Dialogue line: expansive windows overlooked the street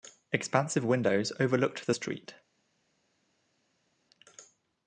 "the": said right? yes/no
yes